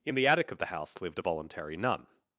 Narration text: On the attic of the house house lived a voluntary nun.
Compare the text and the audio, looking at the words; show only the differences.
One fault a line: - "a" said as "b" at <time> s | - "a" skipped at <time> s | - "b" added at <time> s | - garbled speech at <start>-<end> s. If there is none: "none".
- "On" said as "In" at 0.0 s
- "house" skipped at 1.0 s